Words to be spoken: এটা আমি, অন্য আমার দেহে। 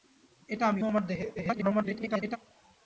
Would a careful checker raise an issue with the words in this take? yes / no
yes